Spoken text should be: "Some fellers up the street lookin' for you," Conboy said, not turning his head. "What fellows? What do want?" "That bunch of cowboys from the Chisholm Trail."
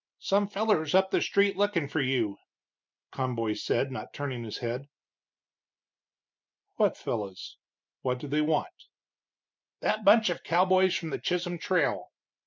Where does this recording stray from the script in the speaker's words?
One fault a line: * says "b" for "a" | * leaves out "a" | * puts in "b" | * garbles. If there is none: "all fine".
* puts in "they"